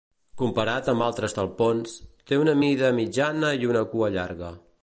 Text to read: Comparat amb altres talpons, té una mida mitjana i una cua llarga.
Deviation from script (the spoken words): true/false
false